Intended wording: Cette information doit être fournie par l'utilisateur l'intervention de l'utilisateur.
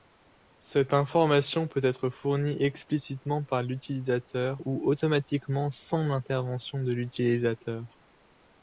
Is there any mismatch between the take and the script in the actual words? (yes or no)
yes